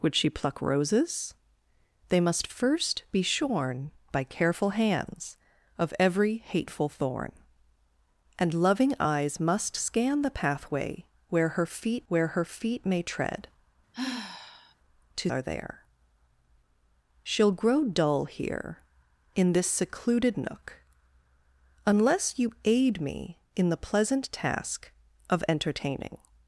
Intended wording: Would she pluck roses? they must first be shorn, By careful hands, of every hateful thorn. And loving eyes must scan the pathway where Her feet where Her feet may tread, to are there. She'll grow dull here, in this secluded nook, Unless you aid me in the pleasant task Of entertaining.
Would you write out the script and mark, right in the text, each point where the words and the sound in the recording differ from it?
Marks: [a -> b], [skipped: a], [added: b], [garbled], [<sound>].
Would she pluck roses? they must first be shorn, By careful hands, of every hateful thorn. And loving eyes must scan the pathway where Her feet where Her feet may tread, [sigh] to are there. She'll grow dull here, in this secluded nook, Unless you aid me in the pleasant task Of entertaining.